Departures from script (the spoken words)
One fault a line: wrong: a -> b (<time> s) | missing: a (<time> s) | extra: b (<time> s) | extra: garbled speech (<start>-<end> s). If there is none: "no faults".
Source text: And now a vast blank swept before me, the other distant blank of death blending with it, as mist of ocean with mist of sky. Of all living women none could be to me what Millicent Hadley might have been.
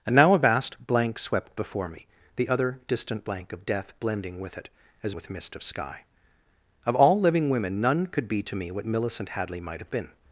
missing: mist of ocean (5.2 s)